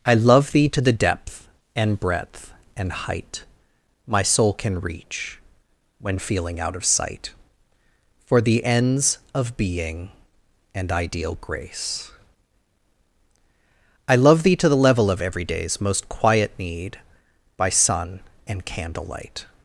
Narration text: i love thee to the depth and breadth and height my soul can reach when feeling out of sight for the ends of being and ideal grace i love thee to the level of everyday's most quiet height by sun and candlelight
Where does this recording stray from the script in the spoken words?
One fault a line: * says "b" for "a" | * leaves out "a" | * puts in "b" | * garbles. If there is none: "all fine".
* says "need" for "height"